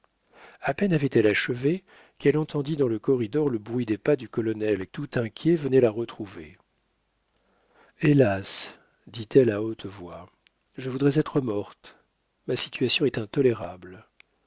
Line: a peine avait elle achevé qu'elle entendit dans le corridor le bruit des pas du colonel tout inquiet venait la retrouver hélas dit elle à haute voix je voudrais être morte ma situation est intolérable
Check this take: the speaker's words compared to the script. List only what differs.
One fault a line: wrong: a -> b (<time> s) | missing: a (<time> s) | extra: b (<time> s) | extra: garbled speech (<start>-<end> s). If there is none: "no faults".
no faults